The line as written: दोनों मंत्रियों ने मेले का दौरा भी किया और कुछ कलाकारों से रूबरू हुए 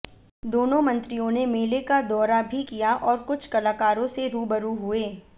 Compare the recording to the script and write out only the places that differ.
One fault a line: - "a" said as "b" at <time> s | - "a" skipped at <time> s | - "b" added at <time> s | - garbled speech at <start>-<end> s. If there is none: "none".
none